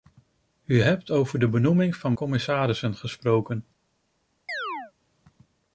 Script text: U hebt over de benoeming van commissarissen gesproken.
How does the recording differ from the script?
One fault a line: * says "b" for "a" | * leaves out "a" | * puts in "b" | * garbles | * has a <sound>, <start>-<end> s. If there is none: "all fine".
* has a chirp, 4.5-4.9 s